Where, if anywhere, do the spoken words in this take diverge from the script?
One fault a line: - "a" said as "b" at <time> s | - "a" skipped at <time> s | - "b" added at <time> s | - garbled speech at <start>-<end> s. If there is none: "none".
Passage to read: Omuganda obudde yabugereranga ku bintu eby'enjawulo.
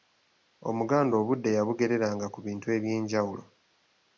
none